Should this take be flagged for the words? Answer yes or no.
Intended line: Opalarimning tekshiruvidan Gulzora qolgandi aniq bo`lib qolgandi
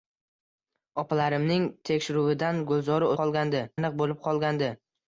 no